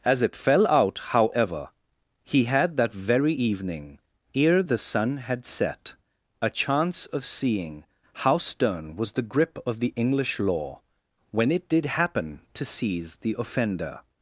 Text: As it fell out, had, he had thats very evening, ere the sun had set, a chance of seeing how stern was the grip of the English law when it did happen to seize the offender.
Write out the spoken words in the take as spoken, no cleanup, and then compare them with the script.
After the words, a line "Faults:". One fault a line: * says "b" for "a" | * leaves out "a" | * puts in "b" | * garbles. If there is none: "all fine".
As it fell out, however, he had that very evening, ere the sun had set, a chance of seeing how stern was the grip of the English law when it did happen to seize the offender.
Faults:
* says "however" for "had"
* says "that" for "thats"